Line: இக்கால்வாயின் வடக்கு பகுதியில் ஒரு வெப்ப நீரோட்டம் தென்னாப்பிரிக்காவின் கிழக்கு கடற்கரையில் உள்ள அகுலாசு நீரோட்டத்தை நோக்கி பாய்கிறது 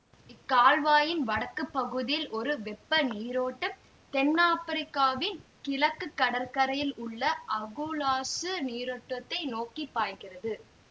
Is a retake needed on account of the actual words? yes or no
no